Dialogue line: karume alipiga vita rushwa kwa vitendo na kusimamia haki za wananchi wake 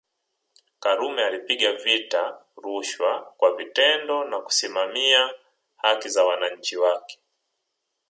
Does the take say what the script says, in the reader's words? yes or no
yes